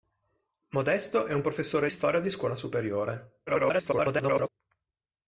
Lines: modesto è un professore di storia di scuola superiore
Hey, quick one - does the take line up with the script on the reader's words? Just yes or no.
no